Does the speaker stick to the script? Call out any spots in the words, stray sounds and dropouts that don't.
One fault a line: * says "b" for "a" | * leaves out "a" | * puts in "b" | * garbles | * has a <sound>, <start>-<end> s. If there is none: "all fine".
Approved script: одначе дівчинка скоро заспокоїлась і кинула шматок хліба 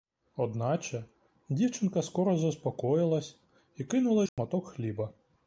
* has a dropout, 4.3-4.4 s